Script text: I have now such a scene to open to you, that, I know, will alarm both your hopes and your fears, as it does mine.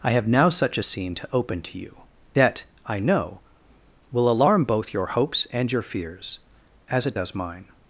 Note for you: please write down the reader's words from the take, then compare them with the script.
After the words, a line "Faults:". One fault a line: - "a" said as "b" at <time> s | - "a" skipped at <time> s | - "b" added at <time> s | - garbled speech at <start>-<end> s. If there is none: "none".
I have now such a scene to open to you, that, I know, will alarm both your hopes and your fears, as it does mine.
Faults:
none